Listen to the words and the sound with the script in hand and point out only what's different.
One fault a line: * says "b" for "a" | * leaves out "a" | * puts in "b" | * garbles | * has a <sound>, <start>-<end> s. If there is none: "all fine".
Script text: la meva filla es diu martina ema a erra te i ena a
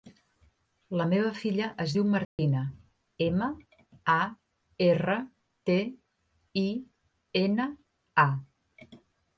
* has a dropout, 2.2-2.4 s